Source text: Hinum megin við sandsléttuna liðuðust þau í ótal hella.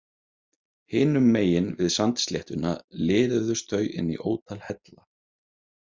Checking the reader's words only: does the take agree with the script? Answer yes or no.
no